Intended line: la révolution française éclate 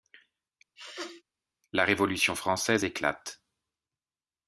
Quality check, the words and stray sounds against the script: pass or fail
fail